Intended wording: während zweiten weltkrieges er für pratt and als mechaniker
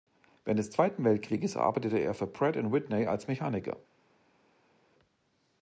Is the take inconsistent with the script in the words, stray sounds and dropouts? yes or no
yes